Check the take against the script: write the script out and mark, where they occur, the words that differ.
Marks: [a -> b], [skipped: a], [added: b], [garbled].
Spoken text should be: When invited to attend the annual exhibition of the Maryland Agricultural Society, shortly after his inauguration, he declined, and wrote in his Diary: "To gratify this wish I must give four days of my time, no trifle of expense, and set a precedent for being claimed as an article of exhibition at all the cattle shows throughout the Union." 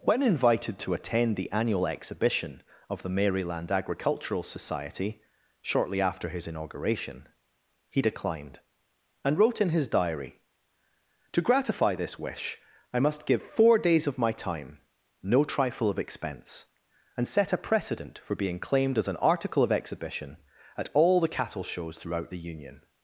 When invited to attend the annual exhibition of the Maryland Agricultural Society, shortly after his inauguration, he declined, and wrote in his Diary: "To gratify this wish I must give four days of my time, no trifle of expense, and set a precedent for being claimed as an article of exhibition at all the cattle shows throughout the Union."